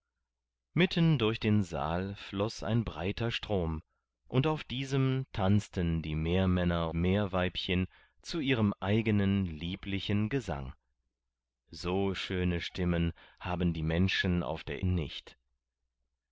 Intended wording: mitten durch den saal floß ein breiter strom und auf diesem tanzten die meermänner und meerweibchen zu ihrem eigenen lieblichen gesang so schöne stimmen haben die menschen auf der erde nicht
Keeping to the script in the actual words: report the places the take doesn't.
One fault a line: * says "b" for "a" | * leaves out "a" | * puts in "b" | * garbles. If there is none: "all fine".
* leaves out "und"
* leaves out "erde"